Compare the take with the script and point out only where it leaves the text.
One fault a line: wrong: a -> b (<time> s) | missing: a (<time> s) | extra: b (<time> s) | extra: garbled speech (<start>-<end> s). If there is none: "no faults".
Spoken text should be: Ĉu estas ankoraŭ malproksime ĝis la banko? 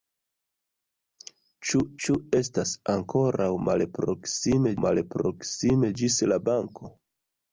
extra: ĉu (2.1 s)
extra: malproksime (4.8 s)